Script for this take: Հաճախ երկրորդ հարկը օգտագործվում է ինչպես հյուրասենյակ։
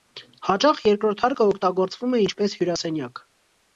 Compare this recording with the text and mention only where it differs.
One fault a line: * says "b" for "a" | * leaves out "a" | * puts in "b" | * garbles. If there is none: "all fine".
all fine